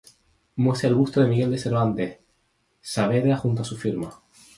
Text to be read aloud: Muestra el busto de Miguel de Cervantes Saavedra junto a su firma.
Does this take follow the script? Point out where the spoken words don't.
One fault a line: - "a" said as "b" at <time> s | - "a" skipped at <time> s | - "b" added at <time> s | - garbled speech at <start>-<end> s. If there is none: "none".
none